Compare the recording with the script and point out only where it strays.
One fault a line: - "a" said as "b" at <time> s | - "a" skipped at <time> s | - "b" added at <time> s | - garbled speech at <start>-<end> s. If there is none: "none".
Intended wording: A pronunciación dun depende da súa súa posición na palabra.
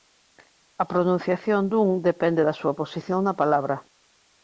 - "súa" skipped at 2.8 s